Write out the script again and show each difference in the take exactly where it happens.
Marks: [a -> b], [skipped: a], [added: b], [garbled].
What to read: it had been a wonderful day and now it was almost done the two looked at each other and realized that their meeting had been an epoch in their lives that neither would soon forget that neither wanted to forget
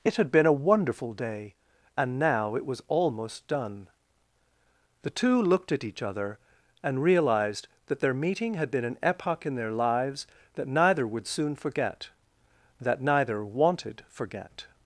it had been a wonderful day and now it was almost done the two looked at each other and realized that their meeting had been an epoch in their lives that neither would soon forget that neither wanted [skipped: to] forget